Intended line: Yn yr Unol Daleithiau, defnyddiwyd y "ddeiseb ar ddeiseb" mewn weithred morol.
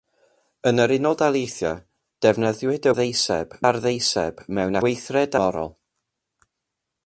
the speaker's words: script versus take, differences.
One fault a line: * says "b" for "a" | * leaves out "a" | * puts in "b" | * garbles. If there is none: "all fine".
all fine